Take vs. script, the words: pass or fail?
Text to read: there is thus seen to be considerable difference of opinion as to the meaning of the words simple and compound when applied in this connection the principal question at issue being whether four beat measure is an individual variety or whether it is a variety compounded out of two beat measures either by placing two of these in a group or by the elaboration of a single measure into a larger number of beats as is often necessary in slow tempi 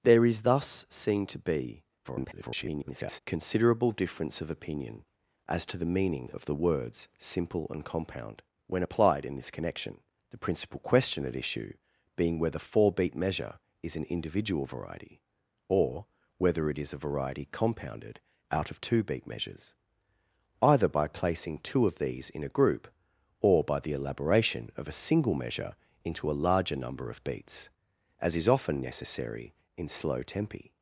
fail